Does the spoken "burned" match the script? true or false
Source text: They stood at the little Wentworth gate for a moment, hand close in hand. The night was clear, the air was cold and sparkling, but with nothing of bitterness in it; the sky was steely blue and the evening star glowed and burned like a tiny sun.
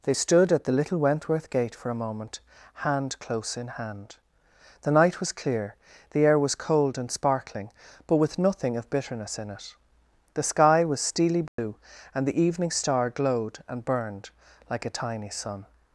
true